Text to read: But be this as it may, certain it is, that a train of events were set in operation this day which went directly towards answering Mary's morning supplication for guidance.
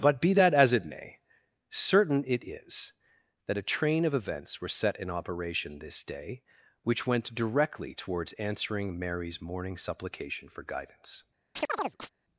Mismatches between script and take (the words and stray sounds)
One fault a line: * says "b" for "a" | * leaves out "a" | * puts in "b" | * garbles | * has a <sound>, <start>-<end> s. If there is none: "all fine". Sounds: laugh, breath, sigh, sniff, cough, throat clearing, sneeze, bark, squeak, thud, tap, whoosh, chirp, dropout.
* says "that" for "this"
* has a chirp, 11.6-12.1 s